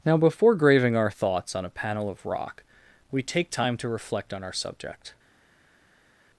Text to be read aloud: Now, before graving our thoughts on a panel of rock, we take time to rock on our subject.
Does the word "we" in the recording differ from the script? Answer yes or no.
no